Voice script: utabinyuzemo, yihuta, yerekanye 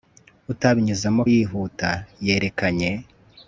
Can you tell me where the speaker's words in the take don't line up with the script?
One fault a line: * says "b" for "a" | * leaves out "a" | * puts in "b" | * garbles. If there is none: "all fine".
all fine